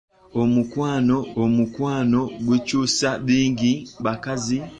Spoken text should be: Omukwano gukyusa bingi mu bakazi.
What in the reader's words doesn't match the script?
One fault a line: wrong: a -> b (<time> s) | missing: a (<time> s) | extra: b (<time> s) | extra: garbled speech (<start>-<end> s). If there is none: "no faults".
extra: omukwano (1.4 s)
missing: mu (3.7 s)